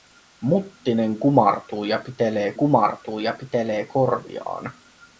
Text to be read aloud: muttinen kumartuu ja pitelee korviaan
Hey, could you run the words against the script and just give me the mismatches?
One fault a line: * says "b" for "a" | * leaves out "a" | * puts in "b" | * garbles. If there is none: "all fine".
* puts in "kumartuu ja pitelee"